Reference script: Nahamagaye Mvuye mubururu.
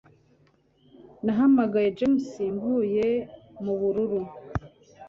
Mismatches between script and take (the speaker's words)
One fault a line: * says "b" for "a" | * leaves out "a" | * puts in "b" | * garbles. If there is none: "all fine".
* puts in "James"